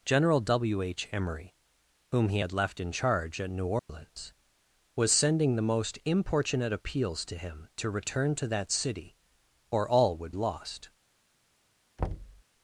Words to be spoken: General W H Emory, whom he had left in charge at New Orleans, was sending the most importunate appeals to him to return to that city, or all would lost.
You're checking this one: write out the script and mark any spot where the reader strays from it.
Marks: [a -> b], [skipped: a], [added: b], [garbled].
General W H Emory, whom he had left in charge at New Orleans, was sending the most importunate appeals to him to return to that city, or all would lost.